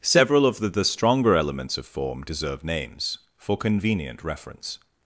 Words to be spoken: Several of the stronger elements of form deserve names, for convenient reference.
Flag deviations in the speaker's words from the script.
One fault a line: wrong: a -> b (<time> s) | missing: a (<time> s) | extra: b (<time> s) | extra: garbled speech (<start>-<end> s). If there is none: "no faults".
extra: the (0.7 s)